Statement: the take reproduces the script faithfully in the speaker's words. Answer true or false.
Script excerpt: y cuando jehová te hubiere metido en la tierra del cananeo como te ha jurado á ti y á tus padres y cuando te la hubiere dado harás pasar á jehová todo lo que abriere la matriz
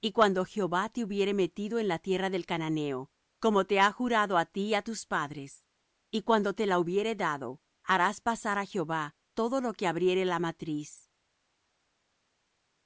true